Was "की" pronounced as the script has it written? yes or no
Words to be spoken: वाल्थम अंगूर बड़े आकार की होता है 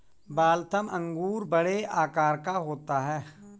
no